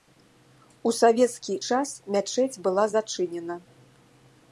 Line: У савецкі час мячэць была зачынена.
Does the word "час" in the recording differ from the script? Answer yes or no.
no